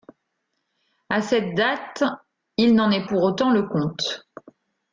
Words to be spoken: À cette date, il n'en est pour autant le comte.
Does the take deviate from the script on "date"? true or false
false